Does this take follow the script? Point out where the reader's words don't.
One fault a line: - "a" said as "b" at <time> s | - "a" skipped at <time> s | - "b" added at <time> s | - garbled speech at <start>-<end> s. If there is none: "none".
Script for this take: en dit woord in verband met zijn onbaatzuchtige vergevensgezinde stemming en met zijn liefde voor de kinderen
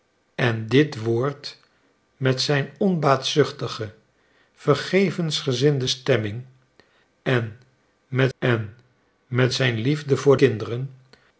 - "in verband" skipped at 1.6 s
- "en met" added at 8.4 s
- "de" skipped at 10.4 s